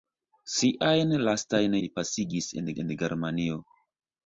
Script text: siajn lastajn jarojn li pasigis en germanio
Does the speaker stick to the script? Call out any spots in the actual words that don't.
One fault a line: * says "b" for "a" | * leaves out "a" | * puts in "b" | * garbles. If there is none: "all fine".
* leaves out "jarojn"
* puts in "en"